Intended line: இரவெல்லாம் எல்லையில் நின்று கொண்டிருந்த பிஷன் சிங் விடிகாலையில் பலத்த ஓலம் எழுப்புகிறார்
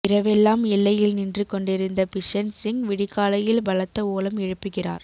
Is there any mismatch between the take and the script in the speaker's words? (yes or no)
no